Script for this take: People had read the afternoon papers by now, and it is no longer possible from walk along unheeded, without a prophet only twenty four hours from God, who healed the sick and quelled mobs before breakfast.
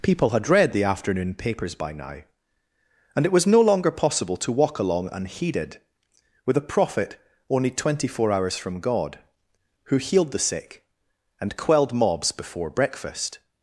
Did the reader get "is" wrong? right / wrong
wrong